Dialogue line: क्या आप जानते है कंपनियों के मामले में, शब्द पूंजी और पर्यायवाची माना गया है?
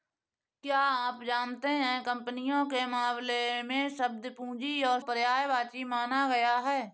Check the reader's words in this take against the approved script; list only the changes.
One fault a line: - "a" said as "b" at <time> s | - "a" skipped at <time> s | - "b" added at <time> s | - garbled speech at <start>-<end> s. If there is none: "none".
none